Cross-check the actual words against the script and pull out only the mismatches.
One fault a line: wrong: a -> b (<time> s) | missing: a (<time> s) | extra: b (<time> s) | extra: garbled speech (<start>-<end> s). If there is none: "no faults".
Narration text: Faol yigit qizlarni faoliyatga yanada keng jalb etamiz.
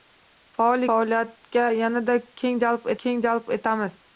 wrong: yigit qizlarni faoliyatga yanada -> faoliyatga yanada keng jalb (0.9 s)